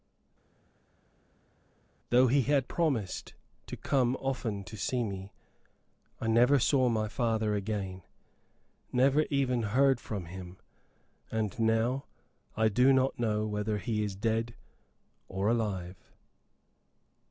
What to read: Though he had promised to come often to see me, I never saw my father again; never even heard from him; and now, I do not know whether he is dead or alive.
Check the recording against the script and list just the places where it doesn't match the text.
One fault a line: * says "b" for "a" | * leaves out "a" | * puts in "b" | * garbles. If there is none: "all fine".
all fine